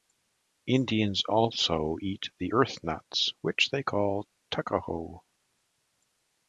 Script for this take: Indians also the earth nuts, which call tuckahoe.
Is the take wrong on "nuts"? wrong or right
right